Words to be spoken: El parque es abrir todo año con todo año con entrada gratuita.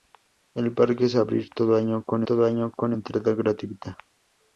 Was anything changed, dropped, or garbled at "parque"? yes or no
no